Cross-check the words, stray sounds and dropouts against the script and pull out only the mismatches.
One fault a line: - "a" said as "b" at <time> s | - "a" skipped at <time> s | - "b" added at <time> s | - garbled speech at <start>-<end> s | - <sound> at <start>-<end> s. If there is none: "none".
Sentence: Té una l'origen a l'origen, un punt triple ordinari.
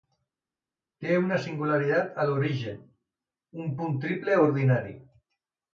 - "l'origen" said as "singularitat" at 1.4 s